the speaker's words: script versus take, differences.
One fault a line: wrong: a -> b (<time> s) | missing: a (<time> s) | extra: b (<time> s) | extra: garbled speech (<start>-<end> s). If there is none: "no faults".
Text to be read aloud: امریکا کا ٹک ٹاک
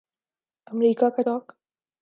missing: ٹک (1.2 s)